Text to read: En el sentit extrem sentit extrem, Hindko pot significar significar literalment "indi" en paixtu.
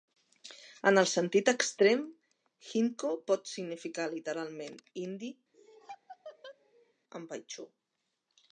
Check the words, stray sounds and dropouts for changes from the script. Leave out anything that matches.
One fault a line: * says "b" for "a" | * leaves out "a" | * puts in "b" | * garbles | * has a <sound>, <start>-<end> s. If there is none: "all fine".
* leaves out "sentit extrem"
* leaves out "significar"
* has a laugh, 5.5-6.9 s